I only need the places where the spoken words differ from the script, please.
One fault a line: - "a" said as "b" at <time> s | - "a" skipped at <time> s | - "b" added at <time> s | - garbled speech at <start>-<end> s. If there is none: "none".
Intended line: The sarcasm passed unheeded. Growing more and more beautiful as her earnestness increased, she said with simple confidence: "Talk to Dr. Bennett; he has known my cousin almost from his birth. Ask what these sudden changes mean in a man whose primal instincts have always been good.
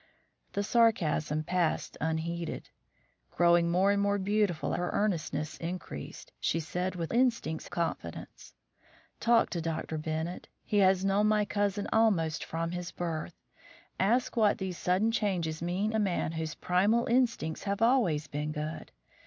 - "as" skipped at 4.7 s
- "simple" said as "instincts" at 7.1 s
- "in" skipped at 15.9 s